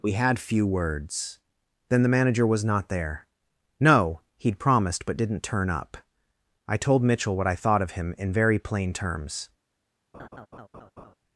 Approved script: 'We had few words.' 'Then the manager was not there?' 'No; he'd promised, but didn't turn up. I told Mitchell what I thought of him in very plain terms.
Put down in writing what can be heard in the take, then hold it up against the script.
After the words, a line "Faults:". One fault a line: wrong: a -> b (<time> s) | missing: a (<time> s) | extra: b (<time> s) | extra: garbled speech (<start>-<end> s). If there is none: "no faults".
'We had few words.' 'Then the manager was not there?' 'No; he'd promised, but didn't turn up. I told Mitchell what I thought of him in very plain terms.
Faults:
no faults